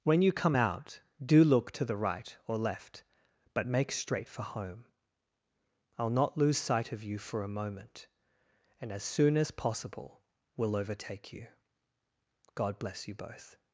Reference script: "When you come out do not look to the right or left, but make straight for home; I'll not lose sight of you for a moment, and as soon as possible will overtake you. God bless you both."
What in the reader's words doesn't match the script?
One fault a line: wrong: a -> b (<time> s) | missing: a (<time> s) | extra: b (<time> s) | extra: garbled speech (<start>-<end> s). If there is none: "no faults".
missing: not (1.4 s)